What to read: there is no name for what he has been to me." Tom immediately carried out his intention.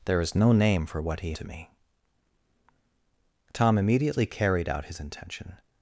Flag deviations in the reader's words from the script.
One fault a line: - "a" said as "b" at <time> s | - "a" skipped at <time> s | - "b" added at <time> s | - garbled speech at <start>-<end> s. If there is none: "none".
- "has been" skipped at 1.3 s